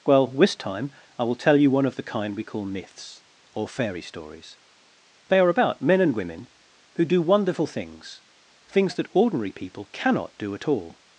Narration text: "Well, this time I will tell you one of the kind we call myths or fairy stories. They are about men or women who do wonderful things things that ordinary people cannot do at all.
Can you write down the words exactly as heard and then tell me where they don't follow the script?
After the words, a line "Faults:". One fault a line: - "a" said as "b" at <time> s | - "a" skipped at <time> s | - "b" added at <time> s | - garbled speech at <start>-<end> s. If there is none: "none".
"Well, this time I will tell you one of the kind we call myths or fairy stories. They are about men and women who do wonderful things things that ordinary people cannot do at all.
Faults:
- "or" said as "and" at 6.0 s